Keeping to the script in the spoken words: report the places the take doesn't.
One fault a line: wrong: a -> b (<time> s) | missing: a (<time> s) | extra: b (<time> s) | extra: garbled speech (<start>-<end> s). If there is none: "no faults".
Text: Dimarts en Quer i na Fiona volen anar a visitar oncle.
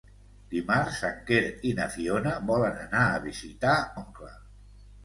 no faults